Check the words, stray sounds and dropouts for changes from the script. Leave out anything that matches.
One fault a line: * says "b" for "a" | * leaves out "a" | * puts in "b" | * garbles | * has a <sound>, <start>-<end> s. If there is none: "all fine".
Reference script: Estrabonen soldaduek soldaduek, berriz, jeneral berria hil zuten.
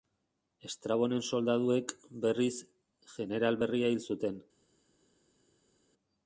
* leaves out "soldaduek"